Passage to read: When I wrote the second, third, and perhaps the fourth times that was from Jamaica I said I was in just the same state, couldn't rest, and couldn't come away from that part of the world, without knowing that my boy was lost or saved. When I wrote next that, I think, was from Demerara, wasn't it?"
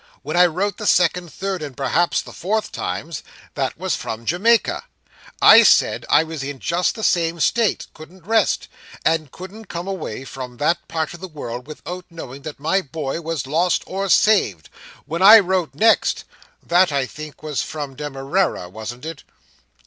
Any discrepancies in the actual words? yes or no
no